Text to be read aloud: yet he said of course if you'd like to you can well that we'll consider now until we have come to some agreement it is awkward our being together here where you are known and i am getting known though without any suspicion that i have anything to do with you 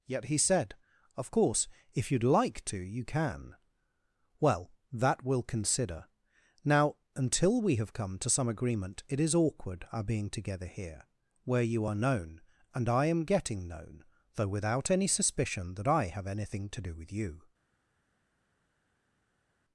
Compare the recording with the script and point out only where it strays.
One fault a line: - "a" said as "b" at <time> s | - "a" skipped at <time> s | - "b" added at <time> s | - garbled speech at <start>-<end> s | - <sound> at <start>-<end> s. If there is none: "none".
none